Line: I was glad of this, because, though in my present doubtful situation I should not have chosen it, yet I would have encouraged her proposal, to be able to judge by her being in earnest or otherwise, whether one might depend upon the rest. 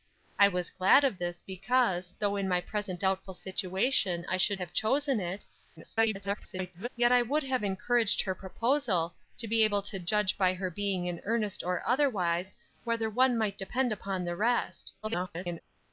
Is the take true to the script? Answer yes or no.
no